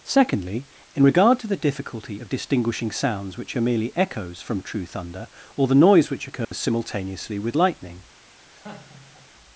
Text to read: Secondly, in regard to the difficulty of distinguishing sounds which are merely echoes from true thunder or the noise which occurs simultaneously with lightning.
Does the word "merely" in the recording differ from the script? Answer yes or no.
no